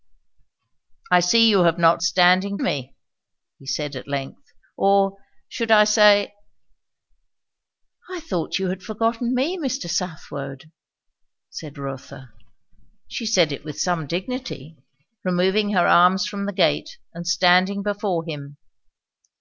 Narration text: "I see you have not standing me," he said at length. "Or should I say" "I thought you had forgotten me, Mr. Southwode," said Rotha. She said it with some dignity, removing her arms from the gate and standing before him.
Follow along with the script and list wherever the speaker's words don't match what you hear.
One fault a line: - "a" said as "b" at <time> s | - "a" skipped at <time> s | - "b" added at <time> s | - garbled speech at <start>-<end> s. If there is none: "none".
none